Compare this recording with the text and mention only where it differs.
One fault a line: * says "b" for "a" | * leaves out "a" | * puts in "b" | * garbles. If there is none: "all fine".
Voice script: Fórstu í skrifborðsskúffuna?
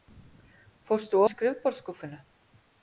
all fine